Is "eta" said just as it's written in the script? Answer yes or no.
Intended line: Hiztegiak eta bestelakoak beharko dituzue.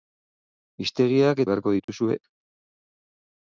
no